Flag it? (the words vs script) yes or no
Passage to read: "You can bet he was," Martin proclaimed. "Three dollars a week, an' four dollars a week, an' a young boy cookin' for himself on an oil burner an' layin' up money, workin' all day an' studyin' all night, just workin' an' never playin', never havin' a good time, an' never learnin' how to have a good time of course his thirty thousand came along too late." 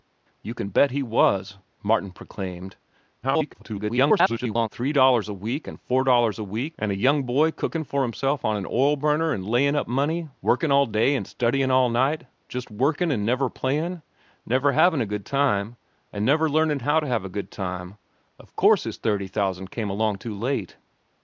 yes